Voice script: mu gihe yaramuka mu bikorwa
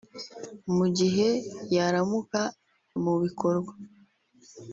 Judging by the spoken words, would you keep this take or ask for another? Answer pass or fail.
pass